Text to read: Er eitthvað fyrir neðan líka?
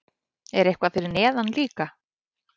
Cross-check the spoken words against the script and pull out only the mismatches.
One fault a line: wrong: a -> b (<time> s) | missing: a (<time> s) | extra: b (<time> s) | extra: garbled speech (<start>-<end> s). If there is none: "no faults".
no faults